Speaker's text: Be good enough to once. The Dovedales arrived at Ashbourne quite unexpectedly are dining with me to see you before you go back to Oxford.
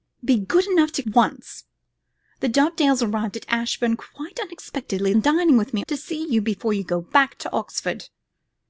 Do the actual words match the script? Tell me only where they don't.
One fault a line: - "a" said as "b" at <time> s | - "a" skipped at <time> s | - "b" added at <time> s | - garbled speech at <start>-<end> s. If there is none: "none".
none